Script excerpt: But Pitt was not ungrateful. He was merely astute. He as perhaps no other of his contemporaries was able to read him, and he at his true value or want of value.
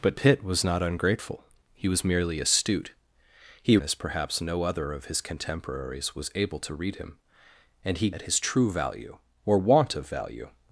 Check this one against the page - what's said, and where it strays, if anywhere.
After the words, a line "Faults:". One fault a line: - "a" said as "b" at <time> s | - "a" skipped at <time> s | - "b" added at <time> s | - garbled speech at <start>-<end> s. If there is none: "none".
But Pitt was not ungrateful. He was merely astute. He as perhaps no other of his contemporaries was able to read him, and he at his true value or want of value.
Faults:
none